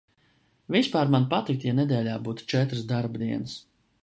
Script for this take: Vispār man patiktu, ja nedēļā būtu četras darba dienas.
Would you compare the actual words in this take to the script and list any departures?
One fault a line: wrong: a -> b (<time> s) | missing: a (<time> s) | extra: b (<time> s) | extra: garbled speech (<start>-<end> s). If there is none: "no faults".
no faults